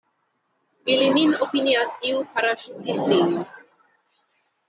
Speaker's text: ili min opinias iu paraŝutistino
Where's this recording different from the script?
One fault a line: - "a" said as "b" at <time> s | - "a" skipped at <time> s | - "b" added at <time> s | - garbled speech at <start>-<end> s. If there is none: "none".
none